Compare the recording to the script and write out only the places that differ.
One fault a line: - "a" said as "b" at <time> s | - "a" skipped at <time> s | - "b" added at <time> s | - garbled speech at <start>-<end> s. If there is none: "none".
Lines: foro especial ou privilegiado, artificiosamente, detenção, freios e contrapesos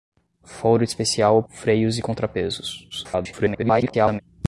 - "privilegiado artificiosamente detenção" skipped at 1.4 s
- garbled speech at 2.9-4.2 s